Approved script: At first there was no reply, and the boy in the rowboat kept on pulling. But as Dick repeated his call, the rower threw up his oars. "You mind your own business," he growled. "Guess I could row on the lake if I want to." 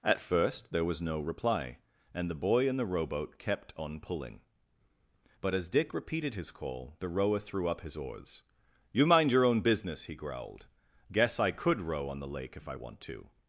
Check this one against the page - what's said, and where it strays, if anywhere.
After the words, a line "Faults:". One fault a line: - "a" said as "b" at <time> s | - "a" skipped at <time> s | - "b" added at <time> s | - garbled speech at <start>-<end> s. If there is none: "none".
At first there was no reply, and the boy in the rowboat kept on pulling. But as Dick repeated his call, the rower threw up his oars. "You mind your own business," he growled. "Guess I could row on the lake if I want to."
Faults:
none